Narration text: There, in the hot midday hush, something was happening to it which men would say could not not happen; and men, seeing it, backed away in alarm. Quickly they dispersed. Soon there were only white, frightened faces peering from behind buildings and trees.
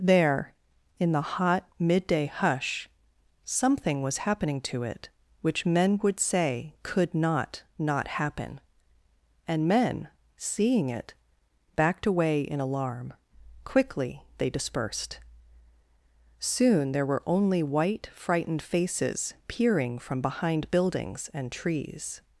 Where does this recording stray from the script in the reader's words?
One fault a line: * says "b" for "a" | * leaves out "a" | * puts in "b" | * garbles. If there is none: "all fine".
all fine